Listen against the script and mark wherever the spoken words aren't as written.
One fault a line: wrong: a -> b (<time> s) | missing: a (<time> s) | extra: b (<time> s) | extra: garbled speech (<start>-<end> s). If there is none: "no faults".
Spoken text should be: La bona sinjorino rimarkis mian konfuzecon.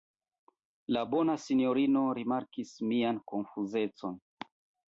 no faults